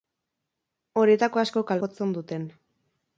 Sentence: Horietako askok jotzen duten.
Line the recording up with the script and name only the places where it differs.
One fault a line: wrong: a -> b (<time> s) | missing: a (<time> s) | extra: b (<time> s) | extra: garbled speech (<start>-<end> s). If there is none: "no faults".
no faults